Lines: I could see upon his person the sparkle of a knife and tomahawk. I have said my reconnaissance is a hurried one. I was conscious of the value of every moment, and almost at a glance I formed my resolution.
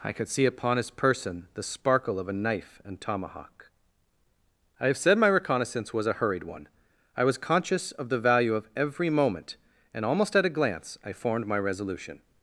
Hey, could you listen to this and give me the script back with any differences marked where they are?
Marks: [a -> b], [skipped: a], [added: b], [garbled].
I could see upon his person the sparkle of a knife and tomahawk. I have said my reconnaissance [is -> was] a hurried one. I was conscious of the value of every moment, and almost at a glance I formed my resolution.